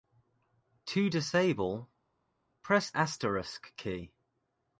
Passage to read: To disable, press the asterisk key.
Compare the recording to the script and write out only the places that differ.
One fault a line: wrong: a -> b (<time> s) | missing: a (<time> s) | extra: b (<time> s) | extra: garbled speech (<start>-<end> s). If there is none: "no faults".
missing: the (2.9 s)